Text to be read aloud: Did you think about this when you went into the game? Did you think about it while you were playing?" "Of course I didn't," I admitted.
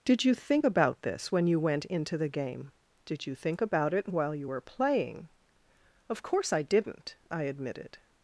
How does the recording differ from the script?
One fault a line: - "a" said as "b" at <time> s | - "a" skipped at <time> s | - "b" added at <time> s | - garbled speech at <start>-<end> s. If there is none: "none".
none